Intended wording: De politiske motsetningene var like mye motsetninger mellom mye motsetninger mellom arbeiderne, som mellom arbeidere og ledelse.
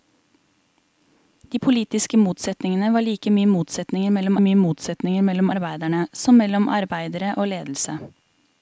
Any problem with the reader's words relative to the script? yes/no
no